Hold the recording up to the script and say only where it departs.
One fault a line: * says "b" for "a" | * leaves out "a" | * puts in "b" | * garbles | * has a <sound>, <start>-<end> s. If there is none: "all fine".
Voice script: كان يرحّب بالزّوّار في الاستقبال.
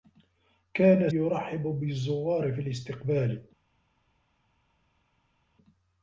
all fine